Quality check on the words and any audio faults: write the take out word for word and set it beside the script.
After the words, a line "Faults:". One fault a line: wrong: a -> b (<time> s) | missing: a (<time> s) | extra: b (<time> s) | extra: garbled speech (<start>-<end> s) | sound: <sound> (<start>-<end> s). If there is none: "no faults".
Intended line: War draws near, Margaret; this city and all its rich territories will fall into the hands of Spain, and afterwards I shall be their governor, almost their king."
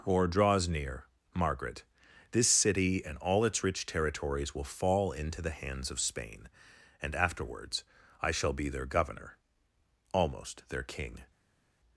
Or draws near, Margaret; this city and all its rich territories will fall into the hands of Spain, and afterwards I shall be their governor, almost their king."
Faults:
wrong: War -> Or (0.1 s)